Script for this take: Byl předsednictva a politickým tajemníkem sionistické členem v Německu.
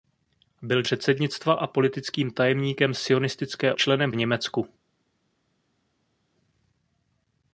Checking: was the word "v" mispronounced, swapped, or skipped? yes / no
no